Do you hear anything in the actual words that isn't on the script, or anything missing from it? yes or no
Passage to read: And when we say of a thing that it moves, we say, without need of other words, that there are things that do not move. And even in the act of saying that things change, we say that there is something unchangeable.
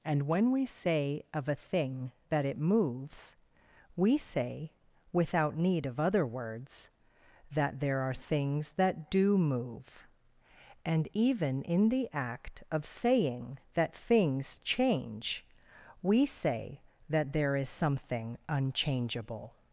yes